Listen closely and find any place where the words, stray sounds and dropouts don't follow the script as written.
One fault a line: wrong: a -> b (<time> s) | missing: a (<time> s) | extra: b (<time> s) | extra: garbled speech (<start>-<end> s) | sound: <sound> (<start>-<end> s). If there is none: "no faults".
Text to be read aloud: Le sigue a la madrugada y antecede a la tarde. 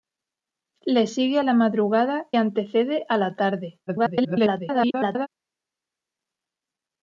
missing: y (2.3 s)
extra: garbled speech (3.9-5.3 s)